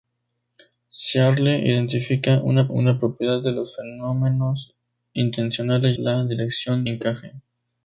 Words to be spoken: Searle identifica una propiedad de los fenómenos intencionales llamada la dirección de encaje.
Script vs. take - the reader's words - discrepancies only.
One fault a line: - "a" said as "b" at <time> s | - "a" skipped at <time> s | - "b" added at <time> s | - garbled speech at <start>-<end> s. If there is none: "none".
- "una" added at 2.7 s
- "llamada" skipped at 6.0 s
- "de" skipped at 6.9 s